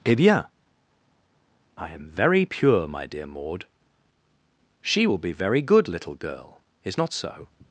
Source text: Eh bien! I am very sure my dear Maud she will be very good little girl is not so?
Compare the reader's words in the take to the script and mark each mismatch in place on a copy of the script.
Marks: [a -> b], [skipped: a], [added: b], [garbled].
Eh bien! I am very [sure -> pure] my dear Maud she will be very good little girl is not so?